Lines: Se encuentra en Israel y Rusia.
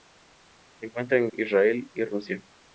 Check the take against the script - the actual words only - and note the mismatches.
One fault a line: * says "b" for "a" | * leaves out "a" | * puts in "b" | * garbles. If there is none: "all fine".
all fine